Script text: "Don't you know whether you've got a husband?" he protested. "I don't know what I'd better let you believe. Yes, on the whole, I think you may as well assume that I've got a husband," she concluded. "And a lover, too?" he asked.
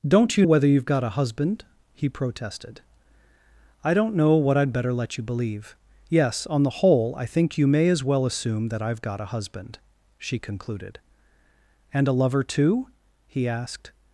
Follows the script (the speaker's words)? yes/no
no